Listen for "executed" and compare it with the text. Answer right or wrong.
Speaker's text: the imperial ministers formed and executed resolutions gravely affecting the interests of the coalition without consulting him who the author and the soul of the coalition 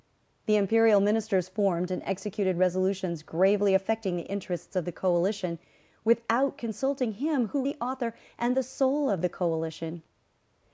right